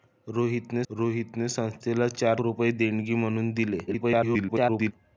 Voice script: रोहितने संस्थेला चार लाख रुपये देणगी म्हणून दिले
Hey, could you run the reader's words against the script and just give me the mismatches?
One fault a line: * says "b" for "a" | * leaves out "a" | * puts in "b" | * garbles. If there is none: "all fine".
* puts in "रोहितने"
* leaves out "लाख"
* garbles